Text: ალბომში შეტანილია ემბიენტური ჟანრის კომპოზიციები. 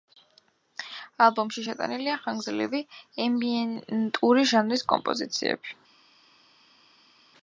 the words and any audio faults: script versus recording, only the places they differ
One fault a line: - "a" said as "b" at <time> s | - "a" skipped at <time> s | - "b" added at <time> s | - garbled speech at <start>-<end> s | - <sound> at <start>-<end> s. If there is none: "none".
- "ხანგრძლივი" added at 2.2 s